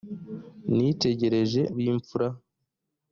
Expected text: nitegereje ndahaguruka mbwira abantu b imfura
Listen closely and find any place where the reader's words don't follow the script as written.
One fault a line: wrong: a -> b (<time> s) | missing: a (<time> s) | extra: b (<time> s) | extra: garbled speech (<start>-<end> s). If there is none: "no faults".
missing: ndahaguruka mbwira abantu (1.6 s)